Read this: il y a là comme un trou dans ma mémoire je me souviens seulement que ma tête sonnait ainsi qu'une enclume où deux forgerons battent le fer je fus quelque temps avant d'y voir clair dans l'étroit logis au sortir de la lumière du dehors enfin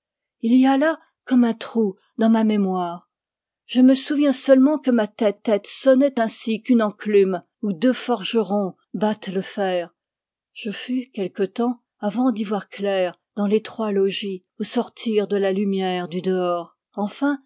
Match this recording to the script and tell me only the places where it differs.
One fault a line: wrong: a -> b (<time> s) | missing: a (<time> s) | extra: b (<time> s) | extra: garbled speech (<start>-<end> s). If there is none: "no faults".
extra: tête (5.3 s)